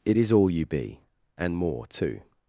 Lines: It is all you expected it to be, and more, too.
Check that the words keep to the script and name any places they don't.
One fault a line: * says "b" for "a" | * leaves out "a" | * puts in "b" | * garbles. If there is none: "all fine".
* leaves out "expected it to"